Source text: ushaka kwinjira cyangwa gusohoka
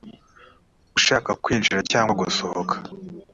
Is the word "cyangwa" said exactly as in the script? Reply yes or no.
yes